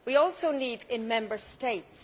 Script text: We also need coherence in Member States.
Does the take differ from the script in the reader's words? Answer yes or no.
yes